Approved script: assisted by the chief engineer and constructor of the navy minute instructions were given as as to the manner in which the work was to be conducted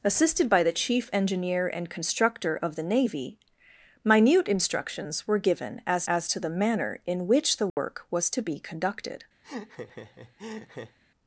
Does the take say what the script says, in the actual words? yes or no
yes